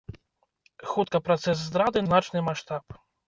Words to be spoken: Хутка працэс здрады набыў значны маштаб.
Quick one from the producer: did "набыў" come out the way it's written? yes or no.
no